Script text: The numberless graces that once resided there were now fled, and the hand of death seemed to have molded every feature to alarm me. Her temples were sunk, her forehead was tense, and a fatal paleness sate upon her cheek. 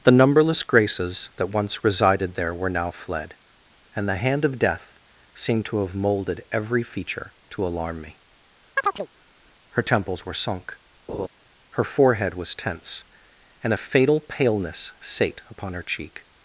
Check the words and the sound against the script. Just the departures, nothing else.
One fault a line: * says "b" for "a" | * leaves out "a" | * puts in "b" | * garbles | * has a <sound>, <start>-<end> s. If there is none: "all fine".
* has a chirp, 8.8-9.1 s
* has a laugh, 11.1-11.3 s